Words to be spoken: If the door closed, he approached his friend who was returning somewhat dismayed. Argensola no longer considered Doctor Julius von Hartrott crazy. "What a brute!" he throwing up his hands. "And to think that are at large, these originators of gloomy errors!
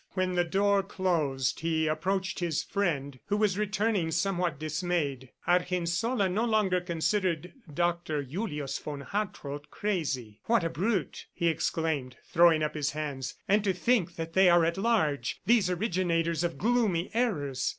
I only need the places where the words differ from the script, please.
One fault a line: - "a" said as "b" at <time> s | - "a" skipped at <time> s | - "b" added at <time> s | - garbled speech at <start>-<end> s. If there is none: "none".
- "If" said as "When" at 0.1 s
- "exclaimed" added at 11.5 s
- "they" added at 14.3 s